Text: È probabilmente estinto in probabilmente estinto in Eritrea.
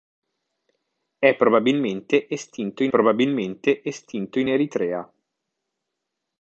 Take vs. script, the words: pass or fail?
pass